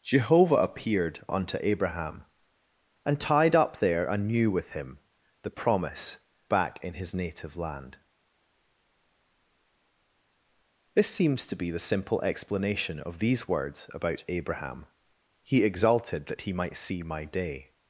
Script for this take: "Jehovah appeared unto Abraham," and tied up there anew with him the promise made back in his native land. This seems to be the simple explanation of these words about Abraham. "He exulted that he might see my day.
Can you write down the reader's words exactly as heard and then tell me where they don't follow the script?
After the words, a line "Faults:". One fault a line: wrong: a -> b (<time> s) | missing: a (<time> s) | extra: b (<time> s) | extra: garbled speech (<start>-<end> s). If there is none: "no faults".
"Jehovah appeared unto Abraham," and tied up there anew with him the promise back in his native land. This seems to be the simple explanation of these words about Abraham. "He exulted that he might see my day.
Faults:
missing: made (6.2 s)